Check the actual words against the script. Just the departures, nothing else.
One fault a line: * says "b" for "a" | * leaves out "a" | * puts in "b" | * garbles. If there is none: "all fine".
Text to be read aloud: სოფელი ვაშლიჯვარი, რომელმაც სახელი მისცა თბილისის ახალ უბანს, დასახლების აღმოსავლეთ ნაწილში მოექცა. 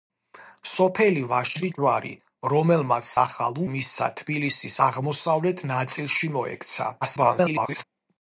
* says "ახალ" for "სახელი"
* leaves out "ახალ უბანს დასახლების"
* garbles